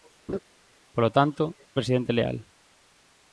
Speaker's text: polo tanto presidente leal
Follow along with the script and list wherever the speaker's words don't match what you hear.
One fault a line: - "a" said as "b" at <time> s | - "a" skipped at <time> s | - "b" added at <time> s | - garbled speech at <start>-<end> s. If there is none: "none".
none